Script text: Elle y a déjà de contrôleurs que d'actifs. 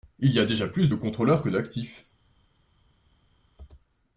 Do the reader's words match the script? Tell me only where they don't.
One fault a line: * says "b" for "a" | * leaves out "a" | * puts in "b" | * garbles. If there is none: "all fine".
* says "Il" for "Elle"
* puts in "plus"